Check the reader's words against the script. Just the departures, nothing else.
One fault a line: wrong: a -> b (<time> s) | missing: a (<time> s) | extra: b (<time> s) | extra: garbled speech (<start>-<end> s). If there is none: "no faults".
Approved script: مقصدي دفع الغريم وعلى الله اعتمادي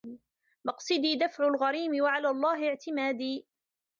no faults